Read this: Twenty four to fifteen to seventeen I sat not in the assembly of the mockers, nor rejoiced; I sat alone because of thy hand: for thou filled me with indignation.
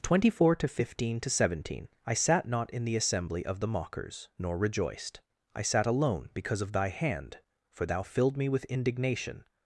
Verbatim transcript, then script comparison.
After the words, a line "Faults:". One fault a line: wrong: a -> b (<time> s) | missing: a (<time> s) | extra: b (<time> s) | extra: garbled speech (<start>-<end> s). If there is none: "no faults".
Twenty four to fifteen to seventeen I sat not in the assembly of the mockers, nor rejoiced; I sat alone because of thy hand: for thou filled me with indignation.
Faults:
no faults